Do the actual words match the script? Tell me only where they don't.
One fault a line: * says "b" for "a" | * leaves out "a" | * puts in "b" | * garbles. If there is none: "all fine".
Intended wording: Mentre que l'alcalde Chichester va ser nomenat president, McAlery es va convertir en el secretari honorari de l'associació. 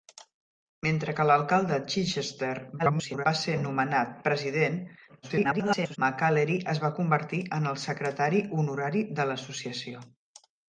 * garbles
* garbles